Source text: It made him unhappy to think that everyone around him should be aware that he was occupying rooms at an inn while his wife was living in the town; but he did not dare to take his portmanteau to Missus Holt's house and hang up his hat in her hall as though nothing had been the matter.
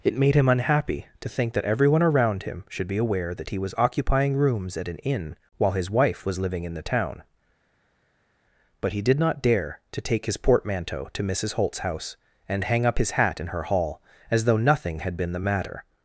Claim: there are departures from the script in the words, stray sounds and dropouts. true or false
false